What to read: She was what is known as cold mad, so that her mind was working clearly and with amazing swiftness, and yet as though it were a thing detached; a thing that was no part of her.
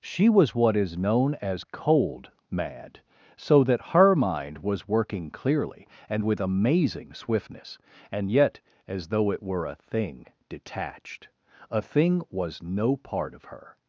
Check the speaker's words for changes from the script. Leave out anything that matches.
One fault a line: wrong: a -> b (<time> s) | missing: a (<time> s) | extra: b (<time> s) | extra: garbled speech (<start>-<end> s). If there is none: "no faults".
missing: that (12.2 s)